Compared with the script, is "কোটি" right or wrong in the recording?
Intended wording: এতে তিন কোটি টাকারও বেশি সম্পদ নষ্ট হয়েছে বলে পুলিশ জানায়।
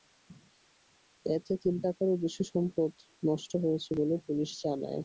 wrong